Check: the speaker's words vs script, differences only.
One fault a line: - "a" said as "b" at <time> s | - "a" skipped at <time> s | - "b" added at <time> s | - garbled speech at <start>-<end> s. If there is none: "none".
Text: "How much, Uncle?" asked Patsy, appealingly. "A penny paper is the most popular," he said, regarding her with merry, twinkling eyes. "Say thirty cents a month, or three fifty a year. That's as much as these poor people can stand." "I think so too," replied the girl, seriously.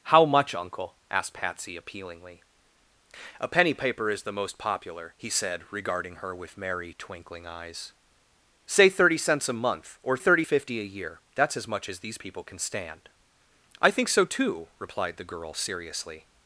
- "three" said as "thirty" at 10.2 s
- "poor" skipped at 12.2 s